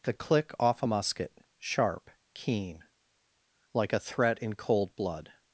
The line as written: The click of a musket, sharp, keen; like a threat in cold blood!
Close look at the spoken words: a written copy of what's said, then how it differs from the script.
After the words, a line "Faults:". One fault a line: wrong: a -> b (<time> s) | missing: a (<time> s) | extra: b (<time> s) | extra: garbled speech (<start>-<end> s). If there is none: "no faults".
The click off a musket, sharp, keen; like a threat in cold blood!
Faults:
wrong: of -> off (0.6 s)